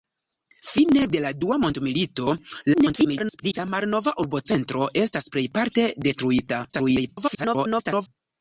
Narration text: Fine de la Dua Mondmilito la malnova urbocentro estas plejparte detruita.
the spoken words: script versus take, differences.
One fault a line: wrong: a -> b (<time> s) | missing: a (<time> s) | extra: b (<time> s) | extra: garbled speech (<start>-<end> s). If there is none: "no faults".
extra: garbled speech (2.7-3.6 s)
extra: garbled speech (6.7-8.1 s)